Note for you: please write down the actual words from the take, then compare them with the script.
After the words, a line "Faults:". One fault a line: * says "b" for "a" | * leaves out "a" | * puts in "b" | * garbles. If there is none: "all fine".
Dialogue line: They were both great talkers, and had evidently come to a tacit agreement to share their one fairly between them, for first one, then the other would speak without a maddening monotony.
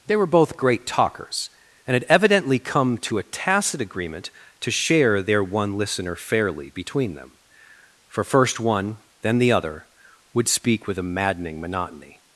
They were both great talkers, and had evidently come to a tacit agreement to share their one listener fairly between them, for first one, then the other would speak with a maddening monotony.
Faults:
* puts in "listener"
* says "with" for "without"